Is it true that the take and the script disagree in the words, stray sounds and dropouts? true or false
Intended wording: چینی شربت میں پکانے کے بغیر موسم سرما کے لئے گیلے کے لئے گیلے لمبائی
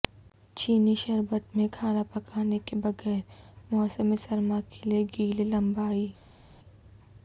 true